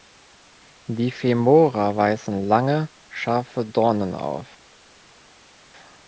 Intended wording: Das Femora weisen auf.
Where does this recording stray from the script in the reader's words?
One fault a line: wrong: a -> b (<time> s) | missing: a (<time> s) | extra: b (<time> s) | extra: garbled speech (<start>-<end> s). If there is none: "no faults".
wrong: Das -> Die (0.9 s)
extra: lange scharfe Dornen (2.4 s)